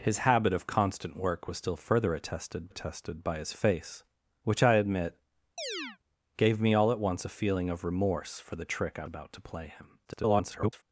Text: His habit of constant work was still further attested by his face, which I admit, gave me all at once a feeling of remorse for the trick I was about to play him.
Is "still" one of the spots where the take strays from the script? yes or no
no